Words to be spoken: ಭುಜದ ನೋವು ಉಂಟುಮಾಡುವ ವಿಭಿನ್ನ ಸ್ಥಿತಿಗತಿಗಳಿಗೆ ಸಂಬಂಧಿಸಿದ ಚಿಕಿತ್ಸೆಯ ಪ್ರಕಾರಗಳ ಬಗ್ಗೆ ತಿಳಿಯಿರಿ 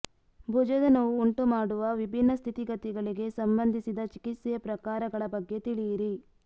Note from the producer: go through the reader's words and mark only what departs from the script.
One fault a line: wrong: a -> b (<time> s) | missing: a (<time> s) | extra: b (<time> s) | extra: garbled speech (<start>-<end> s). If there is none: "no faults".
no faults